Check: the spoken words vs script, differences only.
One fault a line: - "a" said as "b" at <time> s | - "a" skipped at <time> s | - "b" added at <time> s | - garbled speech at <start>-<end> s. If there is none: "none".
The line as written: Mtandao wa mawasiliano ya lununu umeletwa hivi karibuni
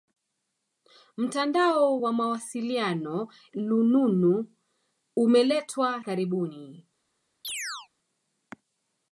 - "ya" skipped at 3.3 s
- "hivi" skipped at 6.0 s